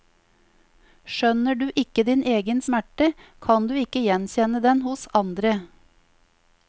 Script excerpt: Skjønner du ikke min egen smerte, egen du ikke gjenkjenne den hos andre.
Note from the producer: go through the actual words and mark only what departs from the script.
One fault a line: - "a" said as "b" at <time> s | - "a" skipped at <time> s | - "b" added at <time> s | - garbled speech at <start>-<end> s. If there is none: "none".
- "min" said as "din" at 2.1 s
- "egen" said as "kan" at 3.5 s